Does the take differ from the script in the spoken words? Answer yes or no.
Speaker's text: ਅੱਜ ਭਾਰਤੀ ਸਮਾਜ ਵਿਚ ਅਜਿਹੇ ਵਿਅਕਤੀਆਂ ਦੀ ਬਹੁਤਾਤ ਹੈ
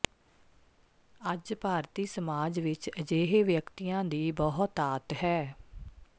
no